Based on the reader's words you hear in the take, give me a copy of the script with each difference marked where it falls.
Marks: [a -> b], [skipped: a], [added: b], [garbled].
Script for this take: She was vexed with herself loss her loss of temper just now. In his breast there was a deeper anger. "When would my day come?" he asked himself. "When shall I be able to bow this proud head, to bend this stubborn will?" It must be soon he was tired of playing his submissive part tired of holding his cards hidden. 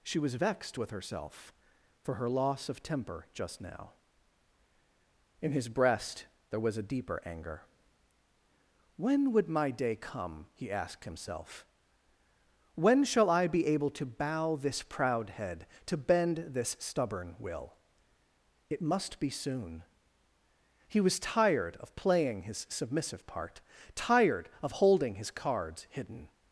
She was vexed with herself [loss -> for] her loss of temper just now. In his breast there was a deeper anger. "When would my day come?" he asked himself. "When shall I be able to bow this proud head, to bend this stubborn will?" It must be soon he was tired of playing his submissive part tired of holding his cards hidden.